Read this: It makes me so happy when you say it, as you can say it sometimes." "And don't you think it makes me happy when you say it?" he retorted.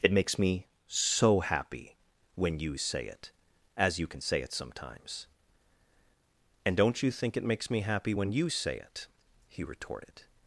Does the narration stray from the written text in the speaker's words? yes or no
no